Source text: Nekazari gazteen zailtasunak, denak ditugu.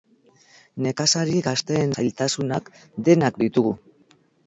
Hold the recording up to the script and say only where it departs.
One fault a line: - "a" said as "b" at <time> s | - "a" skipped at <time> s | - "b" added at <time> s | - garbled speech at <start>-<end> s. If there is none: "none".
none